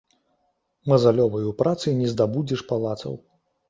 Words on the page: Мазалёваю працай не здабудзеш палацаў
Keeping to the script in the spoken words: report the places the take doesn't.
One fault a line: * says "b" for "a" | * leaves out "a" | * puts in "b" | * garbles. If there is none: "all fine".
all fine